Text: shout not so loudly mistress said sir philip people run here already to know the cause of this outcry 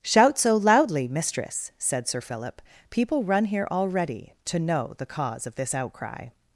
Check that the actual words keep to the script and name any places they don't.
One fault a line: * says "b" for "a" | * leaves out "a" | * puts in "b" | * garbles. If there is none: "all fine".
* leaves out "not"